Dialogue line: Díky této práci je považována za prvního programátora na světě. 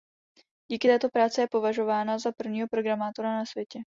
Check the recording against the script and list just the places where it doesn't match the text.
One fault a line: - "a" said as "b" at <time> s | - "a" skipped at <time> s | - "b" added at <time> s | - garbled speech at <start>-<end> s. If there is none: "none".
none